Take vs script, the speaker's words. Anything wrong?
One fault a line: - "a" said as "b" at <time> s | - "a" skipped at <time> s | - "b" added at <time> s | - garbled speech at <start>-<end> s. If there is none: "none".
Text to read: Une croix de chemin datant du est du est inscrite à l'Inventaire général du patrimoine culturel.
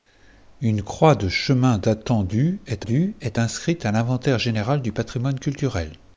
none